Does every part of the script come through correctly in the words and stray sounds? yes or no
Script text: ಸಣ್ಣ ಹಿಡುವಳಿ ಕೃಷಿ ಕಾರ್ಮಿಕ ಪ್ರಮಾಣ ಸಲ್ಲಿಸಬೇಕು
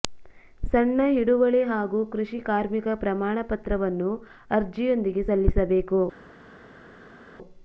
no